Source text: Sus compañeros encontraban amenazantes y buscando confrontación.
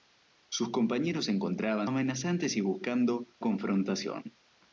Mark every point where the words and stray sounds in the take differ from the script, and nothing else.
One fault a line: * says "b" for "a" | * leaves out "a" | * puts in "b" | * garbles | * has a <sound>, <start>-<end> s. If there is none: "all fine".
all fine